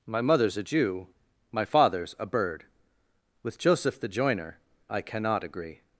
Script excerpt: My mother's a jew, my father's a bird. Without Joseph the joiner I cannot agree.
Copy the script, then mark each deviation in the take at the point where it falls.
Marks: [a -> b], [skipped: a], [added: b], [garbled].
My mother's a jew, my father's a bird. [Without -> With] Joseph the joiner I cannot agree.